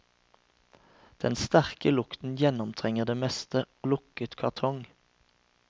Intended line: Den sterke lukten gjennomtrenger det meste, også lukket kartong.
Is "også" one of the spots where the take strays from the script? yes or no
yes